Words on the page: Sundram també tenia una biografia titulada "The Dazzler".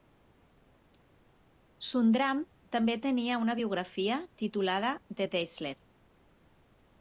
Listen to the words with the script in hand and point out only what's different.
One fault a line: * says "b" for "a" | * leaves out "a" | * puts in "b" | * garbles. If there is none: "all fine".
all fine